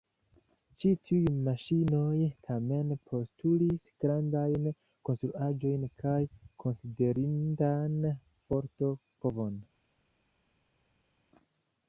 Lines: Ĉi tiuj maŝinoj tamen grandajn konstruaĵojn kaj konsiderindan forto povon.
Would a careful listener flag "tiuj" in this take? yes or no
no